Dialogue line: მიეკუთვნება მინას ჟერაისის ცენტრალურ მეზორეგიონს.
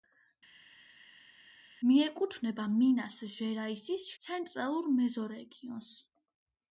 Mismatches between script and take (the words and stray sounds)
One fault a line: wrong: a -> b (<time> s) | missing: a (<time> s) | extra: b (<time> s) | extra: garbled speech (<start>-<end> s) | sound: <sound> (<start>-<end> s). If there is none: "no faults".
no faults